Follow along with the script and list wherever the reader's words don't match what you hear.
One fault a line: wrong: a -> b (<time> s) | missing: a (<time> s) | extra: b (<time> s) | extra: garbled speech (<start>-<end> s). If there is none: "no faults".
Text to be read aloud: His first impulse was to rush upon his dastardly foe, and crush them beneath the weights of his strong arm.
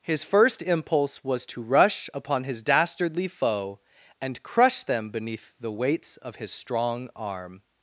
no faults